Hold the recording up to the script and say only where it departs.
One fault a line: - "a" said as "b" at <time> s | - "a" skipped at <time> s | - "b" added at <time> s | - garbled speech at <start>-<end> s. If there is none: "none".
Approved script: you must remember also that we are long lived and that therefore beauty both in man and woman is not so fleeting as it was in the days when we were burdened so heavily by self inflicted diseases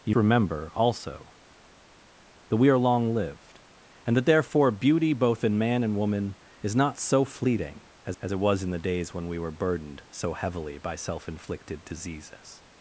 - "must" skipped at 0.1 s
- "as" added at 8.2 s